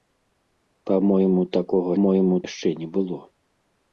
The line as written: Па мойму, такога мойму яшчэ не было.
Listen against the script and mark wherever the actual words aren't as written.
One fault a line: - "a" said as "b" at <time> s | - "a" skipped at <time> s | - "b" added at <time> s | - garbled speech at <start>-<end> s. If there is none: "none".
none